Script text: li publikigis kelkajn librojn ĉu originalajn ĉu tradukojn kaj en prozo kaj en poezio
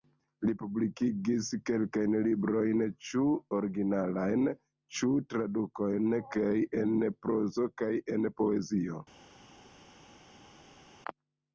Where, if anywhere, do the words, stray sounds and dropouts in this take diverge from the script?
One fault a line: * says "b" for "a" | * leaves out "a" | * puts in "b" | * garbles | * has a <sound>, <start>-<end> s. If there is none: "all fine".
all fine